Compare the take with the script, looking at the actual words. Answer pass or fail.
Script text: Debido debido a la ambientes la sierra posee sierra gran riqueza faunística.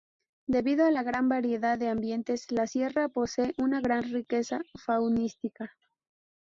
fail